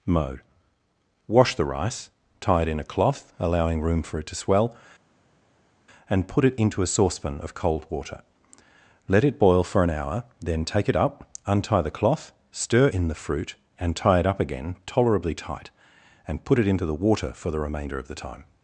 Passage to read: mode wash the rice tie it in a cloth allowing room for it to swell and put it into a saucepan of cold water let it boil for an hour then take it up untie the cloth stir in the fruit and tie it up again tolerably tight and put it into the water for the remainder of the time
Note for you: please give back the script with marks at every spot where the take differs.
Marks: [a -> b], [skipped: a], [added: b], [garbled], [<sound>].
mode wash the rice tie it in a cloth allowing room for it to swell and put it into a saucepan of cold water let it boil for an hour then take it up untie the cloth stir in the fruit and tie it up again tolerably tight and put it into the water for the remainder of the time